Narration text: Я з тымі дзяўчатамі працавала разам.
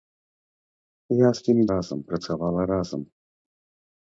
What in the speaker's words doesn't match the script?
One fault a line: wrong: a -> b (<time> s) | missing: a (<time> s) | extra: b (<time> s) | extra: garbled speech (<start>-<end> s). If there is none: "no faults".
wrong: дзяўчатамі -> разам (1.7 s)